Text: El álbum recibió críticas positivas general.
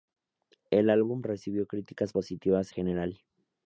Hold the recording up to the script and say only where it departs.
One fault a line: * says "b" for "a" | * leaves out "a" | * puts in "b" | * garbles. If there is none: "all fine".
all fine